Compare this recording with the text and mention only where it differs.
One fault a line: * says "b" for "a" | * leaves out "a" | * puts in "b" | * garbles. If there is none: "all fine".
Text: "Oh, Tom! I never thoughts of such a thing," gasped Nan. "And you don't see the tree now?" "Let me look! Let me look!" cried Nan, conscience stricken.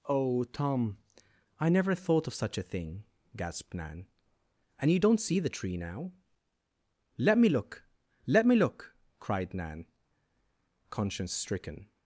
* says "thought" for "thoughts"